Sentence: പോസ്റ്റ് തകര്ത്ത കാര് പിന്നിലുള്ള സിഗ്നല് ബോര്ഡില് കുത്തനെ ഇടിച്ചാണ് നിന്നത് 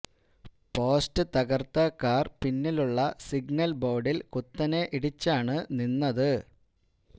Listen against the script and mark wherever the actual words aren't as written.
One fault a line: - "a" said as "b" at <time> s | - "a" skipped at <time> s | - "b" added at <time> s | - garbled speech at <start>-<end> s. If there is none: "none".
none